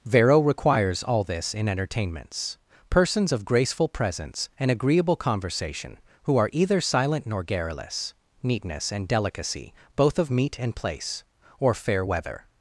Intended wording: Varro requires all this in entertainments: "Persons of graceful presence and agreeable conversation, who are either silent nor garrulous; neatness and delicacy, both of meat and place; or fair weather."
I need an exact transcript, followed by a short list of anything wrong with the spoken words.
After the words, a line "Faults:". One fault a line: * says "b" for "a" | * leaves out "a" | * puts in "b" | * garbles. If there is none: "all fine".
Varro requires all this in entertainments: "Persons of graceful presence and agreeable conversation, who are either silent nor garrulous; neatness and delicacy, both of meat and place; or fair weather."
Faults:
all fine